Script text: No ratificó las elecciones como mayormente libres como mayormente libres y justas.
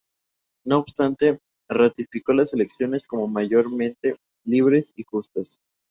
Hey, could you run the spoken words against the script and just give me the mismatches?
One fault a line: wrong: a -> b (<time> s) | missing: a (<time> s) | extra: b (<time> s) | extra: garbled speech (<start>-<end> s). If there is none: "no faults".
extra: obstante (0.8 s)
missing: como mayormente libres (4.9 s)